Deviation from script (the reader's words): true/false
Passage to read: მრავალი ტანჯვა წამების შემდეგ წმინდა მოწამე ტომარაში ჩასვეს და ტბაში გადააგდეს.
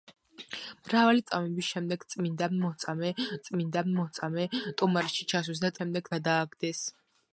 true